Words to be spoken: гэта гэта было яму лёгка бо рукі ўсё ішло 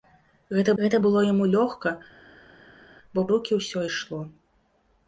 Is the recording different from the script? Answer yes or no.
no